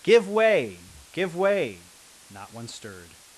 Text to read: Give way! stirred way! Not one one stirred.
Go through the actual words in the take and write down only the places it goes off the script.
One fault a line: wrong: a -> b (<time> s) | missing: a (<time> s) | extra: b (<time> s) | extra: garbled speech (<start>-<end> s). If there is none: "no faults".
wrong: stirred -> give (1.1 s)
missing: one (2.7 s)